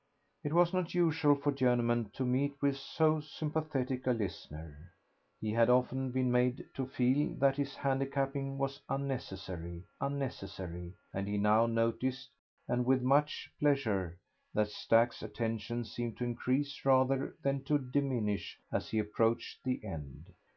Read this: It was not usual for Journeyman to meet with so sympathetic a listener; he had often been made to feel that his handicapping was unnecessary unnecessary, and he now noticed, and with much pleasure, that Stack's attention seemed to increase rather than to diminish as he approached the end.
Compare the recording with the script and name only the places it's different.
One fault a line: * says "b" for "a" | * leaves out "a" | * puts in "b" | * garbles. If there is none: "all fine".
all fine